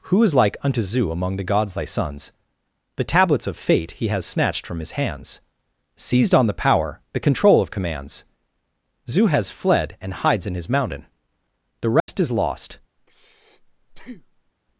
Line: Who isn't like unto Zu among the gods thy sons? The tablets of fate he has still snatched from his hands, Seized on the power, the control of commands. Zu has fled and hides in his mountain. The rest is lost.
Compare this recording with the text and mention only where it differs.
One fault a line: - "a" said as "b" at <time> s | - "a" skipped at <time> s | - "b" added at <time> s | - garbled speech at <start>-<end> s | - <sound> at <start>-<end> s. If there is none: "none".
- "isn't" said as "is" at 0.2 s
- "still" skipped at 4.2 s
- dropout at 12.0-12.1 s
- breath at 13.0-14.5 s